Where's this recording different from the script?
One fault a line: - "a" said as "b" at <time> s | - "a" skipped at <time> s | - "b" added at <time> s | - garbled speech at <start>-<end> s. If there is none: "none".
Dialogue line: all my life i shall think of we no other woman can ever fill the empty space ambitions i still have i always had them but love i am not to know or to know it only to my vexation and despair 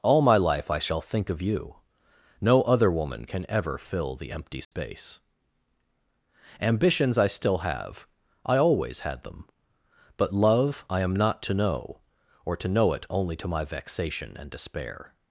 - "we" said as "you" at 1.4 s